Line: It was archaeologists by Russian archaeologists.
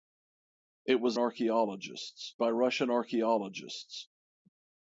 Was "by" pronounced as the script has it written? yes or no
yes